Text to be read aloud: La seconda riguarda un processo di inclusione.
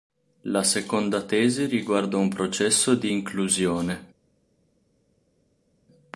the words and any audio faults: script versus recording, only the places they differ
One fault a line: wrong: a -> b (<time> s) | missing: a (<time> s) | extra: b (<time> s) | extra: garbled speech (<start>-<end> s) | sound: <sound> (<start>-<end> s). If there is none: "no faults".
extra: tesi (1.2 s)